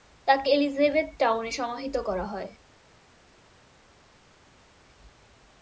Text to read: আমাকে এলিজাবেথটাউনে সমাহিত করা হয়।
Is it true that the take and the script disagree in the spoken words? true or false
true